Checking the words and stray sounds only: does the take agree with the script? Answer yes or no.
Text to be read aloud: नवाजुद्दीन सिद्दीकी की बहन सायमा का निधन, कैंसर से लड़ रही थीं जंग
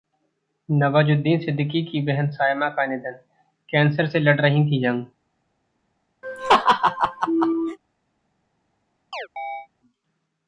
no